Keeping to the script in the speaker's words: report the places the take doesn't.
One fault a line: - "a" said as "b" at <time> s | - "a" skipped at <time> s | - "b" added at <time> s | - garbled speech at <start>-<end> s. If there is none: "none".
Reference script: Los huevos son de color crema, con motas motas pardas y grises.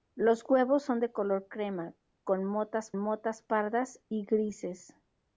none